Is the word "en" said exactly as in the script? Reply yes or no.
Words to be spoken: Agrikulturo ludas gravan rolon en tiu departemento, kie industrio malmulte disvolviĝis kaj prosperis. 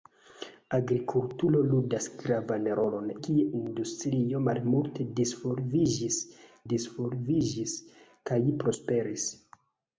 no